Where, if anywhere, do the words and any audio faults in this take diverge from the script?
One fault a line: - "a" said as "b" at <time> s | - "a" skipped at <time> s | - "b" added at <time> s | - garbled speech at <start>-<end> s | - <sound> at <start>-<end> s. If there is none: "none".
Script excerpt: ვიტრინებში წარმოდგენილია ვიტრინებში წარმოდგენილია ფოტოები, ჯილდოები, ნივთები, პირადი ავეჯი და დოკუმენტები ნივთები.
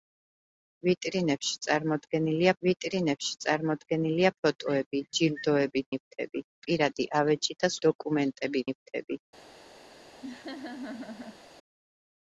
- laugh at 10.2-11.4 s